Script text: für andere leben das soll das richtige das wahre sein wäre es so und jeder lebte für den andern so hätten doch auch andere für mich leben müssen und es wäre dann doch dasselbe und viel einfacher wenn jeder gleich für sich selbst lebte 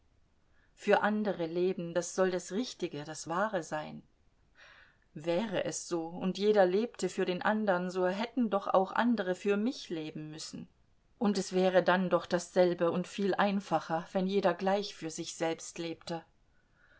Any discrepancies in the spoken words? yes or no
no